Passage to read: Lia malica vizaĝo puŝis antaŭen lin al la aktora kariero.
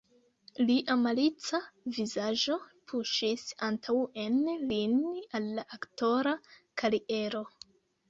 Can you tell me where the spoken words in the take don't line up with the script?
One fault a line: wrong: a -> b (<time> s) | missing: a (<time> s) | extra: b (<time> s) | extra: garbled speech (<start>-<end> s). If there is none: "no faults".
no faults